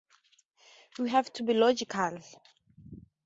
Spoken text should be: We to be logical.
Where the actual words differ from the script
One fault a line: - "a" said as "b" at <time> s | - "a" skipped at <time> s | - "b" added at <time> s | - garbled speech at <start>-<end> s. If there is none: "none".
- "have" added at 1.1 s